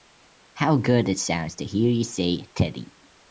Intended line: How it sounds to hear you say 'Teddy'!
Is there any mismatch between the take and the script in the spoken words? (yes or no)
yes